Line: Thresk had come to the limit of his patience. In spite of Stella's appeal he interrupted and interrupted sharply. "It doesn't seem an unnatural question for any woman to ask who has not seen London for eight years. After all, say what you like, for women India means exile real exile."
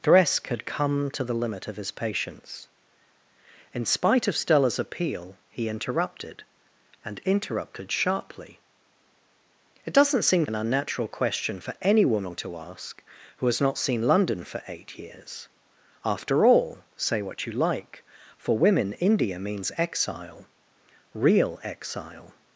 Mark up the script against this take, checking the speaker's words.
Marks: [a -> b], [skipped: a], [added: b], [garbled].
Thresk had come to the limit of his patience. In spite of Stella's appeal he interrupted and interrupted sharply. "It doesn't seem an unnatural question for any woman to ask who has not seen London for eight years. After all, say what you like, for women India means exile real exile."